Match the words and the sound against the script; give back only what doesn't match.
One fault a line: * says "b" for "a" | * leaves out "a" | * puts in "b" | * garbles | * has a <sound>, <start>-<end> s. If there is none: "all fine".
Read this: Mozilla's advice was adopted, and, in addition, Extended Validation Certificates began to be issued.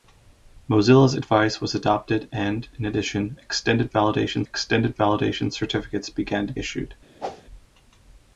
* puts in "Extended Validation"
* leaves out "be"
* has a whoosh, 7.2-7.4 s